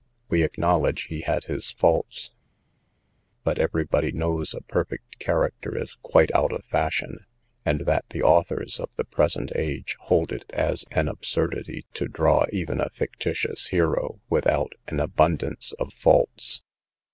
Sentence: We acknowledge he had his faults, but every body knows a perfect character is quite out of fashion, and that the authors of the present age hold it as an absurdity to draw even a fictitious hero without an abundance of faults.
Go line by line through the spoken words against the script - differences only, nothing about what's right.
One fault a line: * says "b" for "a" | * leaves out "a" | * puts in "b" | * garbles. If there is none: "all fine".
all fine